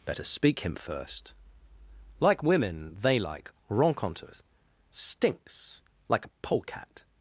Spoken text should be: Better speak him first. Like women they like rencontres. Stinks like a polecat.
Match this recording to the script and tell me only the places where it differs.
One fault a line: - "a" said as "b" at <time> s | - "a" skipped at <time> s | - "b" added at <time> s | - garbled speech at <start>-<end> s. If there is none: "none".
none